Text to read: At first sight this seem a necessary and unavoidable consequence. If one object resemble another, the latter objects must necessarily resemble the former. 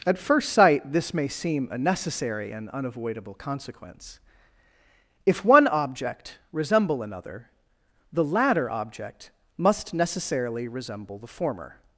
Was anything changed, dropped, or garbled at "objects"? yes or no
yes